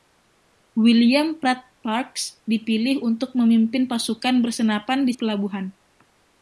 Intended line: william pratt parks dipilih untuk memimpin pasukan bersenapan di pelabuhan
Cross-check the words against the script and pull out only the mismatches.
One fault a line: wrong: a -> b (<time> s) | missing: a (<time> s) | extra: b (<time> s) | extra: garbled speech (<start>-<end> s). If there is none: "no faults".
no faults